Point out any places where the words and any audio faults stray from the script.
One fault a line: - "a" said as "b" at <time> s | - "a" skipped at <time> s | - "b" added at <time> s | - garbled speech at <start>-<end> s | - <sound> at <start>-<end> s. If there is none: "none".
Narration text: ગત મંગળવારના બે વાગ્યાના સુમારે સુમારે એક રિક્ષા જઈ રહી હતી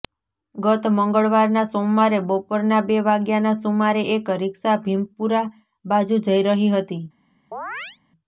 - "સોમવારે બપોરના" added at 1.7 s
- "સુમારે" skipped at 4.0 s
- "ભીમપુરા બાજુ" added at 4.8 s
- chirp at 7.5-8.0 s